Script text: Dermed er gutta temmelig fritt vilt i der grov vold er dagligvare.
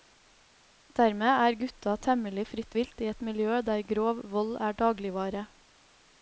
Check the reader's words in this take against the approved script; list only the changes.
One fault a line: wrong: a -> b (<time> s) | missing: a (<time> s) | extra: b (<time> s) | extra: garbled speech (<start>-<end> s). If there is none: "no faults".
extra: et miljø (3.1 s)